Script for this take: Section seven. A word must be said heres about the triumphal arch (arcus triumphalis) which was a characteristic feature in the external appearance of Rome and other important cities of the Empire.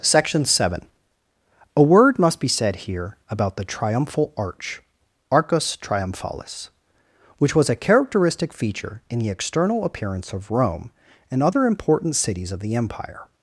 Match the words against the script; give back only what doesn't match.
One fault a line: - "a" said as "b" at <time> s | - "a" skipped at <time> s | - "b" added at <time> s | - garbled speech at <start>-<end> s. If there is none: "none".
- "heres" said as "here" at 2.9 s